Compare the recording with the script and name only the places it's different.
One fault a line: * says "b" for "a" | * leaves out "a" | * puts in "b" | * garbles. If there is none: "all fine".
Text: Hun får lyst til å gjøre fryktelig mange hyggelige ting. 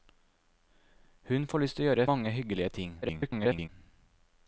* leaves out "fryktelig"
* garbles